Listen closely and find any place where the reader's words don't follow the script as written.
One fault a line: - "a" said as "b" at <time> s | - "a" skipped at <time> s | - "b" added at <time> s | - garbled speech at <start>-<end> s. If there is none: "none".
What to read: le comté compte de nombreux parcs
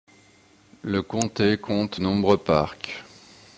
- "de" skipped at 2.0 s